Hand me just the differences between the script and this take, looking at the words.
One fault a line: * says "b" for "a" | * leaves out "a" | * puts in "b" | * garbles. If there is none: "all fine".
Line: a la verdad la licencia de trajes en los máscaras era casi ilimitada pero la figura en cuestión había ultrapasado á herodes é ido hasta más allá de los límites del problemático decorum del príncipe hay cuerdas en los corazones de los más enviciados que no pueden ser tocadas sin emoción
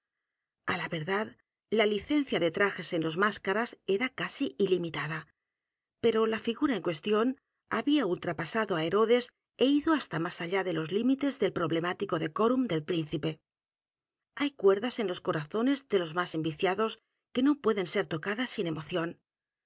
all fine